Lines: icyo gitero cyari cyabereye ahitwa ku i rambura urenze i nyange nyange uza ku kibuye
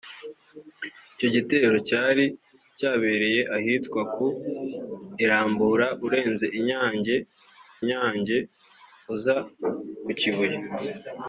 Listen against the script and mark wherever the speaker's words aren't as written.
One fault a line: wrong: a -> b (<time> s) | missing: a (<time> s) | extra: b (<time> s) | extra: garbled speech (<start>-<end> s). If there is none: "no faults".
no faults